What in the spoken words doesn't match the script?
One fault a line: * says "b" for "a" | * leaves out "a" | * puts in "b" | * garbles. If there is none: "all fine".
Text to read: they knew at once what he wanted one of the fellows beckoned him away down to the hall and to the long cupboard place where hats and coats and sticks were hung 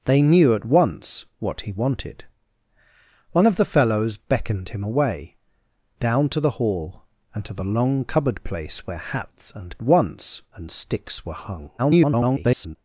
* says "once" for "coats"
* garbles